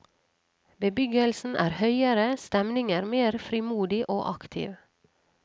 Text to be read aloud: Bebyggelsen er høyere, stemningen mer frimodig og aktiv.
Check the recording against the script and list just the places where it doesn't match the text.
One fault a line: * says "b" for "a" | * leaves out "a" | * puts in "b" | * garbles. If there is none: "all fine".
all fine